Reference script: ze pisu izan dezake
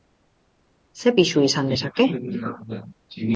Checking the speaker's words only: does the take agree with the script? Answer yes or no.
yes